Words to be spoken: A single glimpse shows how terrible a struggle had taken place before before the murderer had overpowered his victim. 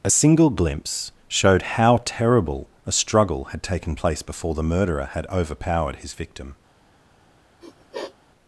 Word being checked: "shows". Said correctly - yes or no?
no